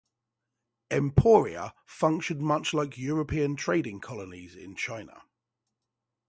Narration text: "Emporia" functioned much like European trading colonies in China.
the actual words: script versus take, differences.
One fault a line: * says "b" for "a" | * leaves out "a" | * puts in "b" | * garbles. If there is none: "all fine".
all fine